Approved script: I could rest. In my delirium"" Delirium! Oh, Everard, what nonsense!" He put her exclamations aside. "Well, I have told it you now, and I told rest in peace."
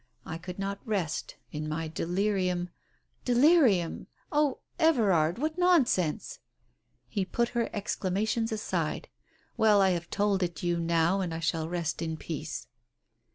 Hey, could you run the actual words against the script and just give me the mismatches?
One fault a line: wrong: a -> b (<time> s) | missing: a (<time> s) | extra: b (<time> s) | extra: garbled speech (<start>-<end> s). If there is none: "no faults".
extra: not (0.6 s)
wrong: told -> shall (11.4 s)